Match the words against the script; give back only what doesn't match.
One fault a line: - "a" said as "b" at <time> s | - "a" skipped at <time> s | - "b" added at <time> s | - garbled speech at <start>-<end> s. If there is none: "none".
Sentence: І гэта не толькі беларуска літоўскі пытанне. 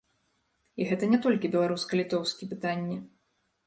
none